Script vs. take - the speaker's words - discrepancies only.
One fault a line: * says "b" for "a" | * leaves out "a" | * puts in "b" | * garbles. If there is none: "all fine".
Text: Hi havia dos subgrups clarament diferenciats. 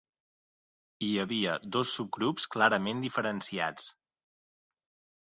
all fine